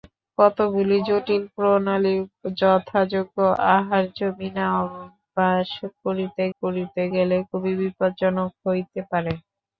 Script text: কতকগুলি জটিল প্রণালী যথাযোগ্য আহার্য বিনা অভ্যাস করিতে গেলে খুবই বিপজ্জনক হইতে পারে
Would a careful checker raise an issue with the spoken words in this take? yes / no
yes